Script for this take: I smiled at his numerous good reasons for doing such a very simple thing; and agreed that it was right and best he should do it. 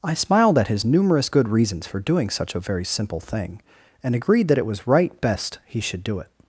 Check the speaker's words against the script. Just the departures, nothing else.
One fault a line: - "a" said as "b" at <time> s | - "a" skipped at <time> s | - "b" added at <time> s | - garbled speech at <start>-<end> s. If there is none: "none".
- "and" skipped at 5.2 s